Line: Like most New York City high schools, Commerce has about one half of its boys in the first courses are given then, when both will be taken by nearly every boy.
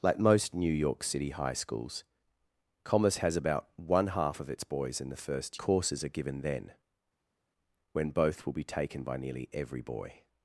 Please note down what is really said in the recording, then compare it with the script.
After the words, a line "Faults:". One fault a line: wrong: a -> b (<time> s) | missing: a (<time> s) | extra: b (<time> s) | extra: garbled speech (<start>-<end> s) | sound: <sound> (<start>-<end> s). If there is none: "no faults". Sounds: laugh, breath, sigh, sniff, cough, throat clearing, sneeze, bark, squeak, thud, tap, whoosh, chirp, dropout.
Like most New York City high schools, Commerce has about one half of its boys in the first courses are given then, when both will be taken by nearly every boy.
Faults:
no faults